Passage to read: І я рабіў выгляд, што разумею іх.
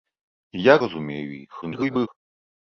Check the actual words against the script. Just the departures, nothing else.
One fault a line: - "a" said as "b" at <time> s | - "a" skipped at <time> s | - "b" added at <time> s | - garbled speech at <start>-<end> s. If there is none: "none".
- "рабіў выгляд што" skipped at 0.8 s
- garbled speech at 1.6-2.1 s